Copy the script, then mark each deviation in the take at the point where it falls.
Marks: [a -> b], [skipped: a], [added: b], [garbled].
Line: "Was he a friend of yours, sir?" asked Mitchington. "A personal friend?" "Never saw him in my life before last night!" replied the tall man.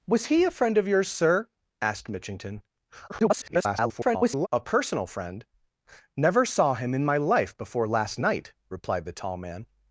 "Was he a friend of yours, sir?" asked Mitchington. [garbled] "A personal friend?" "Never saw him in my life before last night!" replied the tall man.